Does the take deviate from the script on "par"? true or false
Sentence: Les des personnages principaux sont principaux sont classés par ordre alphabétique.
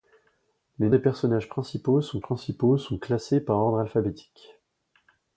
false